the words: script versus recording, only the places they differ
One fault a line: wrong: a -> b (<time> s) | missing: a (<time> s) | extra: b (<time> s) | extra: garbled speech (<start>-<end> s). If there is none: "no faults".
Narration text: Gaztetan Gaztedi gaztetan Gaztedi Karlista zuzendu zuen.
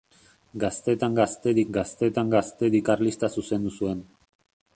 no faults